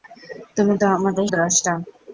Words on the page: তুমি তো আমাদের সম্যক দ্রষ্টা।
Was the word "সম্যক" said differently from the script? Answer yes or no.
yes